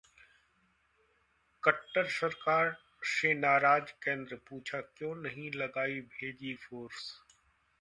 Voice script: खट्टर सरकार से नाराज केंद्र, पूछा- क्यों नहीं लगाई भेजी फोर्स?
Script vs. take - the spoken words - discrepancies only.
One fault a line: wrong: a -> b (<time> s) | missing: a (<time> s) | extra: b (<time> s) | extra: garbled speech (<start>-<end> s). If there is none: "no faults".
no faults